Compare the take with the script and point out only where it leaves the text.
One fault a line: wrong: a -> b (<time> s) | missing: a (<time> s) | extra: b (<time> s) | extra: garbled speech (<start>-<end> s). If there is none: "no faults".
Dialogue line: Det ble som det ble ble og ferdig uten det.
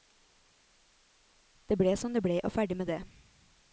missing: ble (2.4 s)
wrong: uten -> med (2.8 s)